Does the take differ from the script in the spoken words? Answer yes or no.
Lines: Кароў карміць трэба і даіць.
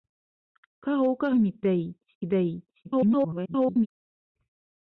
yes